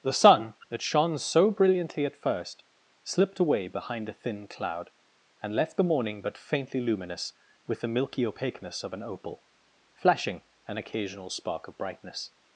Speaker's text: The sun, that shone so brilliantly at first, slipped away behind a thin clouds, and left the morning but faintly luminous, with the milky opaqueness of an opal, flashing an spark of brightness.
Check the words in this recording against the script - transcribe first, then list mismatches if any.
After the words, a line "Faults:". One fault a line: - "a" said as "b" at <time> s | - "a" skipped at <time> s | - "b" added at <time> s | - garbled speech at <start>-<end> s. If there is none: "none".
The sun, that shone so brilliantly at first, slipped away behind a thin cloud, and left the morning but faintly luminous, with the milky opaqueness of an opal, flashing an occasional spark of brightness.
Faults:
- "clouds" said as "cloud" at 4.5 s
- "occasional" added at 10.8 s